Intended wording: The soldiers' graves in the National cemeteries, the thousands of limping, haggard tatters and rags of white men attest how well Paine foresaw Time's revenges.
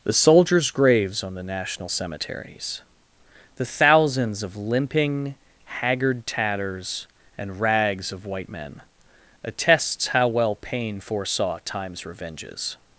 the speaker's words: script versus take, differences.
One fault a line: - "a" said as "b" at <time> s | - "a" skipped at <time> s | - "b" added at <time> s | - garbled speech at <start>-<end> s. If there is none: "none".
- "in" said as "on" at 1.2 s
- "attest" said as "attests" at 9.4 s